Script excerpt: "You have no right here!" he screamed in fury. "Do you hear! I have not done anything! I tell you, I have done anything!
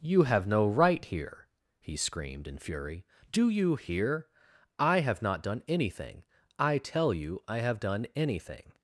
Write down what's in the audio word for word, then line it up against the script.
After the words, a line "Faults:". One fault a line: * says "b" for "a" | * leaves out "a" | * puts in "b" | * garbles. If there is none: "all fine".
"You have no right here!" he screamed in fury. "Do you hear! I have not done anything! I tell you, I have done anything!
Faults:
all fine